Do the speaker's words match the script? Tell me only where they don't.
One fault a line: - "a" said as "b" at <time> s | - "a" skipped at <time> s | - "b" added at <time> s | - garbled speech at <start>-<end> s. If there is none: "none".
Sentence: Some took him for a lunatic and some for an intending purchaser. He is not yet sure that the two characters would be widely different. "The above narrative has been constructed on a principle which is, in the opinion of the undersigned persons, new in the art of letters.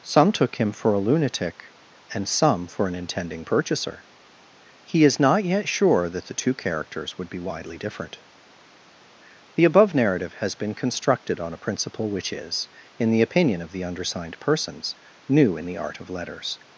none